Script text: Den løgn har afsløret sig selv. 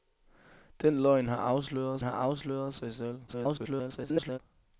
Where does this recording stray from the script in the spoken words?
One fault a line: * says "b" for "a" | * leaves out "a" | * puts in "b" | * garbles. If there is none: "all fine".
* puts in "har afsløret"
* garbles